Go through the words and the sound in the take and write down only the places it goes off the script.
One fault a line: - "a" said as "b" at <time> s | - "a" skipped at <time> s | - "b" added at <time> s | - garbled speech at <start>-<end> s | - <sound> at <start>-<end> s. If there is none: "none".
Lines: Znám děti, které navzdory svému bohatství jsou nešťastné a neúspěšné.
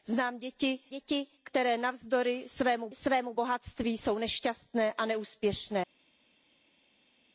- "děti" added at 0.9 s
- "svému" added at 2.9 s